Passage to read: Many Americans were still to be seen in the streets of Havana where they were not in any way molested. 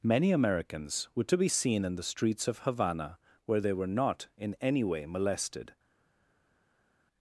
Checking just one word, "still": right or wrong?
wrong